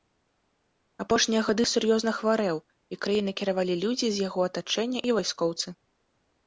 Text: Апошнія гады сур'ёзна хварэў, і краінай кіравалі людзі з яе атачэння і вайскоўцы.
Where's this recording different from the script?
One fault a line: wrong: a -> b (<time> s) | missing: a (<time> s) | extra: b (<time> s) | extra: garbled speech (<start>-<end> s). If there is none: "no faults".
wrong: яе -> яго (4.3 s)